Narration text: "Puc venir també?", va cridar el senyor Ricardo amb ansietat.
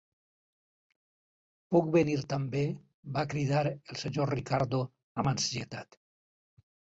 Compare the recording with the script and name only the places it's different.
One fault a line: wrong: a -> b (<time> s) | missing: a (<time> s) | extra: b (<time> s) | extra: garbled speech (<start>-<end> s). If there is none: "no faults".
no faults